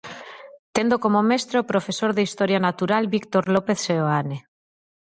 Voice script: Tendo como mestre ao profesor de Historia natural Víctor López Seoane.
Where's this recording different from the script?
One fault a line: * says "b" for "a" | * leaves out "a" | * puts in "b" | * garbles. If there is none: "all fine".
all fine